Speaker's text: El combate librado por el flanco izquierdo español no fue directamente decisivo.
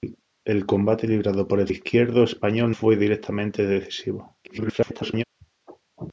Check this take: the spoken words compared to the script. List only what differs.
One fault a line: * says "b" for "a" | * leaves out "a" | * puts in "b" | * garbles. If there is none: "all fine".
* leaves out "flanco"
* leaves out "no"
* garbles